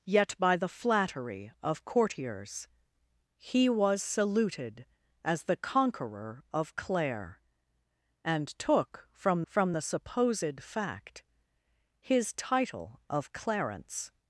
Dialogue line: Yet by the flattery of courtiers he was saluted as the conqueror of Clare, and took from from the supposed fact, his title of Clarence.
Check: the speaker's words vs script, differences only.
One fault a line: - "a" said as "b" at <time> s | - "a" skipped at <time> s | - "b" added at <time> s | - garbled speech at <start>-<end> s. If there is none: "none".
none